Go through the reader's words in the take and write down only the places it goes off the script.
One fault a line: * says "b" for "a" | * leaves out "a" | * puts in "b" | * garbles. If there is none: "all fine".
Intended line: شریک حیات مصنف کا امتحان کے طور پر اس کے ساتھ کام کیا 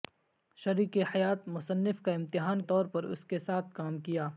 * leaves out "کے"